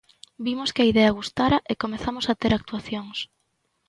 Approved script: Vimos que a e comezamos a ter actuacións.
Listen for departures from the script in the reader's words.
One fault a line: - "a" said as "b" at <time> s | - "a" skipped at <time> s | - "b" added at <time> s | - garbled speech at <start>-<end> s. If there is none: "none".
- "idea gustara" added at 0.9 s